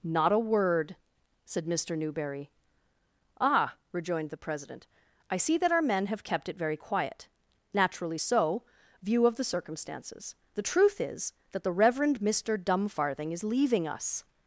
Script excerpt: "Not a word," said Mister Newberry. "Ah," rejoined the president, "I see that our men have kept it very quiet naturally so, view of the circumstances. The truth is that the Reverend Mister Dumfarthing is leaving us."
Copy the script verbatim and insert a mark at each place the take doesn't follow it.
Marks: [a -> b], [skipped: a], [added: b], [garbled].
"Not a word," said Mister Newberry. "Ah," rejoined the president, "I see that our men have kept it very quiet naturally so, view of the circumstances. The truth is that the Reverend Mister Dumfarthing is leaving us."